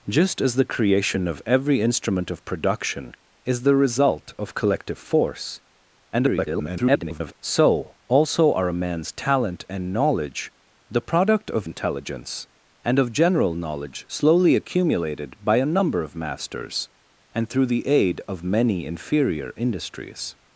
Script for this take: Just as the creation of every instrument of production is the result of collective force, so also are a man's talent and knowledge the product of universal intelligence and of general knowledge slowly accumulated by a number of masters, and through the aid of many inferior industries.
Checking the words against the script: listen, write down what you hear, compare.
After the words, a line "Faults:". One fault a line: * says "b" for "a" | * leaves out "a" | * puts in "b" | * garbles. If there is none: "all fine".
Just as the creation of every instrument of production is the result of collective force, [garbled] so also are a man's talent and knowledge the product of intelligence and of general knowledge slowly accumulated by a number of masters, and through the aid of many inferior industries.
Faults:
* garbles
* leaves out "universal"